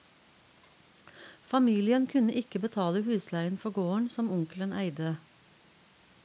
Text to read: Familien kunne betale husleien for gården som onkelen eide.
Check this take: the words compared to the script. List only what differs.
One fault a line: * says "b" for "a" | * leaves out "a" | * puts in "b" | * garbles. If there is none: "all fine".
* puts in "ikke"